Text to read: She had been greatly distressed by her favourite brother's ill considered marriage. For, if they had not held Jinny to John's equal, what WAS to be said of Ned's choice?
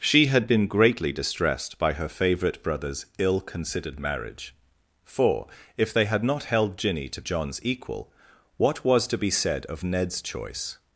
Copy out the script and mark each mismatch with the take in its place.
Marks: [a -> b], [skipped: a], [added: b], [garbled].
She had been greatly distressed by her favourite brother's ill considered marriage. For, if they had not held Jinny to John's equal, what WAS to be said of Ned's choice?